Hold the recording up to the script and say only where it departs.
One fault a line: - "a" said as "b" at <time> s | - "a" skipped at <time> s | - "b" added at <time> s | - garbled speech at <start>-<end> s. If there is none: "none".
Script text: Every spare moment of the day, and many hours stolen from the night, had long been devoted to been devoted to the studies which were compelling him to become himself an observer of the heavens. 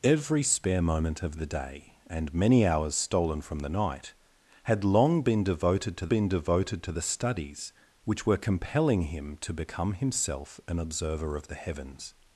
none